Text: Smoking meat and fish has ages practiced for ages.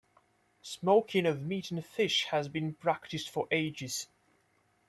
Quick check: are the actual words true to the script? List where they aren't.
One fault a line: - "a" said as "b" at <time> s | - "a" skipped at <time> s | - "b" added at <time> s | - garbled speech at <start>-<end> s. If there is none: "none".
- "of" added at 1.3 s
- "ages" said as "been" at 2.5 s